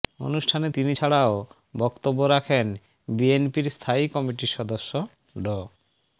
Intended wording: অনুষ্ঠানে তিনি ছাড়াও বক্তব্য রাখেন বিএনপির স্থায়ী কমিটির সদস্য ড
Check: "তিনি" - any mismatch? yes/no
no